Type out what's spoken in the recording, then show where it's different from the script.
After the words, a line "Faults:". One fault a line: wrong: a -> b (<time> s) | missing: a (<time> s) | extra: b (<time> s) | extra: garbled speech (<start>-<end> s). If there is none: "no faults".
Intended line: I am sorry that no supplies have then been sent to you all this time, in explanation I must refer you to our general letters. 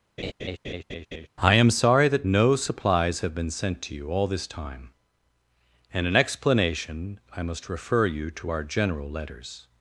I am sorry that no supplies have been sent to you all this time, and in explanation I must refer you to our general letters.
Faults:
missing: then (3.3 s)
extra: and (5.9 s)